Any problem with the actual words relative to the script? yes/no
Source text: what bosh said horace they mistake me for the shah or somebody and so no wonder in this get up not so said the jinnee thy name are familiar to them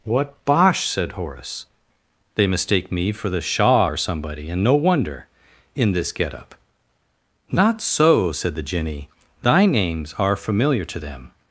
yes